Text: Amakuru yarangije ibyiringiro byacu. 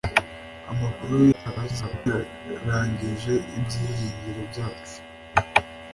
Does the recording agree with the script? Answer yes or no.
no